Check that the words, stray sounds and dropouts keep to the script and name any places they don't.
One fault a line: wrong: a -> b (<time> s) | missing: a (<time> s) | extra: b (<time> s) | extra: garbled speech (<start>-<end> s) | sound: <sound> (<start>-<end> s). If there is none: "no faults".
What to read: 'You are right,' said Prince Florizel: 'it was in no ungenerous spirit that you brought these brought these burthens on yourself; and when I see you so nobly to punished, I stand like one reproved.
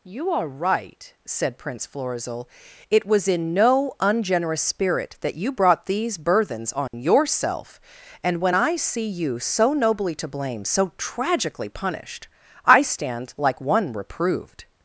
missing: brought these (6.2 s)
sound: dropout (6.9-6.9 s)
extra: blame so tragically (10.3 s)